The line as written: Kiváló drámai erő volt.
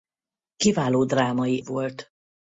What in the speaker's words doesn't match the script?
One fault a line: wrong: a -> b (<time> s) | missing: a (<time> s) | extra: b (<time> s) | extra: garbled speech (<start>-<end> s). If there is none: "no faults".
missing: erő (1.6 s)